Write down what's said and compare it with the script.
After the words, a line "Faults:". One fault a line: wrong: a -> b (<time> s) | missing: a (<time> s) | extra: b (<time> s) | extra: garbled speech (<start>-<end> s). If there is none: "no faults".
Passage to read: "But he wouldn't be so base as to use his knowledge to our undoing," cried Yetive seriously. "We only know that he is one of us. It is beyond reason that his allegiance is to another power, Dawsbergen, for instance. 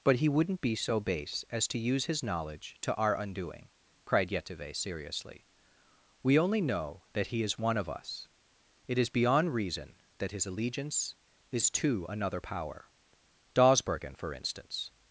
"But he wouldn't be so base as to use his knowledge to our undoing," cried Yetive seriously. "We only know that he is one of us. It is beyond reason that his allegiance is to another power, Dawsbergen, for instance.
Faults:
no faults